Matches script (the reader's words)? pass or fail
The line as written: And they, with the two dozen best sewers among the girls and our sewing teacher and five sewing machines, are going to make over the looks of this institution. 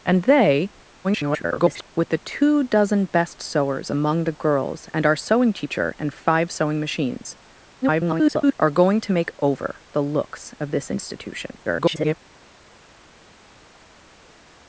fail